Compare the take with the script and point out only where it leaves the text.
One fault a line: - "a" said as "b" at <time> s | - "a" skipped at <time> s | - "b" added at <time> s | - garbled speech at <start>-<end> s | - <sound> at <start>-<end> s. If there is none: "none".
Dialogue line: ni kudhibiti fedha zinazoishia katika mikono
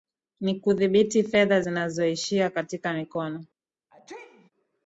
- sneeze at 3.9-4.5 s